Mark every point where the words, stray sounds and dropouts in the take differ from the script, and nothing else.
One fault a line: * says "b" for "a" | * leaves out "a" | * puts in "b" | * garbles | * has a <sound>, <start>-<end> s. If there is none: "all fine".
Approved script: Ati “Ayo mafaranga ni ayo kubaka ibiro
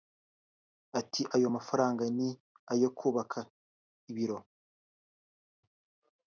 all fine